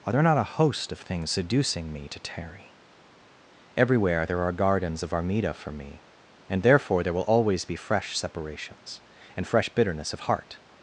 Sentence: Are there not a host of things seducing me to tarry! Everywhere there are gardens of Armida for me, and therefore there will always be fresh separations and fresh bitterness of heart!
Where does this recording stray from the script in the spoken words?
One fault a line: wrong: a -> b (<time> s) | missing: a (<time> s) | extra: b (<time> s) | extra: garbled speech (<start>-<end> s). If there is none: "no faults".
no faults